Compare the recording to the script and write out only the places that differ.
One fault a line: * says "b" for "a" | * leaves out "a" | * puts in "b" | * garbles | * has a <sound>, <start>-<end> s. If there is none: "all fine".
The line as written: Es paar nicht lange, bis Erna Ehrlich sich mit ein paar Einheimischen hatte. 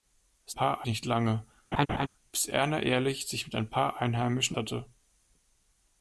* has a laugh, 1.7-2.1 s